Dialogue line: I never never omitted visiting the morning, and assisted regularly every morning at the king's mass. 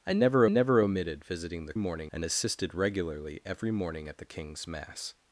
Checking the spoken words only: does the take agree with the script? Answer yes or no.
yes